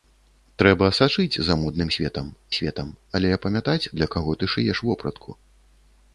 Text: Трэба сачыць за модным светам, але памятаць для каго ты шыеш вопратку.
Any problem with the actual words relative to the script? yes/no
yes